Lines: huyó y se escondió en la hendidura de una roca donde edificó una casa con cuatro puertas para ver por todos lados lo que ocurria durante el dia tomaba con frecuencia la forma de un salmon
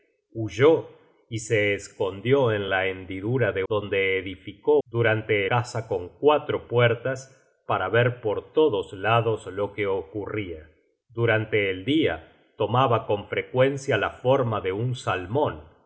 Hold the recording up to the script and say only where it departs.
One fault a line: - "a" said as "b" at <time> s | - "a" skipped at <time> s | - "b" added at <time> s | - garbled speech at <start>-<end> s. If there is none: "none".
- "una roca" skipped at 3.6 s
- "una" said as "durante" at 4.9 s